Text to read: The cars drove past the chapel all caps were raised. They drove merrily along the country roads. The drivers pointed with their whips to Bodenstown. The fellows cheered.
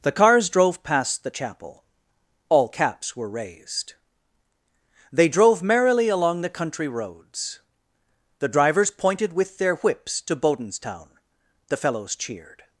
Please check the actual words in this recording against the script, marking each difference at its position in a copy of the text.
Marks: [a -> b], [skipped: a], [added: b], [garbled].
The cars drove past the chapel all caps were raised. They drove merrily along the country roads. The drivers pointed with their whips to Bodenstown. The fellows cheered.